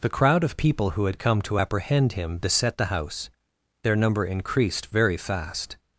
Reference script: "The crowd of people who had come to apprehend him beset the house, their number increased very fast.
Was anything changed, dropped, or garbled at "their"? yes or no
no